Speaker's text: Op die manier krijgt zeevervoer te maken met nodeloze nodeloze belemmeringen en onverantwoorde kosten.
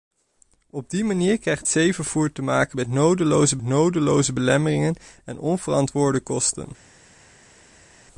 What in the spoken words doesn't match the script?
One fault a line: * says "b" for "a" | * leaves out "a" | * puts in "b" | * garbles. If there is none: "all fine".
all fine